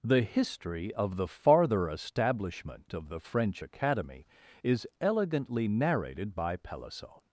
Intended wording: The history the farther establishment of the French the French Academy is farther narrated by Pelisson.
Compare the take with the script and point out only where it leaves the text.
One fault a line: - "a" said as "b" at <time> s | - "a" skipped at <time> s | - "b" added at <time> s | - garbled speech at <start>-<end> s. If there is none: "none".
- "of" added at 0.9 s
- "the French" skipped at 3.6 s
- "farther" said as "elegantly" at 5.0 s